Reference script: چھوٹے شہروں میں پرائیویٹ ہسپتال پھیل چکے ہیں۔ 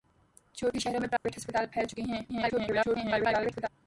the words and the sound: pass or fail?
fail